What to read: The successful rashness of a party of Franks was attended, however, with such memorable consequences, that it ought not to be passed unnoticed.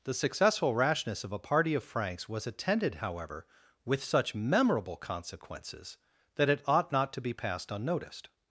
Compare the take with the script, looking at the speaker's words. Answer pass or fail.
pass